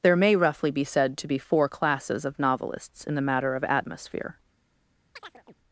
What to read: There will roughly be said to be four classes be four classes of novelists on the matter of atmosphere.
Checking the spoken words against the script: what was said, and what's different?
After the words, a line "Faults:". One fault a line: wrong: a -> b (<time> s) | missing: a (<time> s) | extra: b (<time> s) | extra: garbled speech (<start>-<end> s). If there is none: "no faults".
There may roughly be said to be four classes of novelists in the matter of atmosphere.
Faults:
wrong: will -> may (0.1 s)
missing: be four classes (2.2 s)
wrong: on -> in (3.1 s)